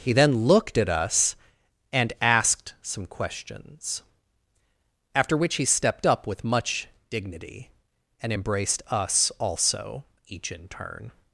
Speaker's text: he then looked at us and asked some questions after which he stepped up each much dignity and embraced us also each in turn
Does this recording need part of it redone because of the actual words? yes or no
yes